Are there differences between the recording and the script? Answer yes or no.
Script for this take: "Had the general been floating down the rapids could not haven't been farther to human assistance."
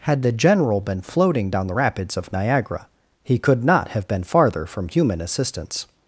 yes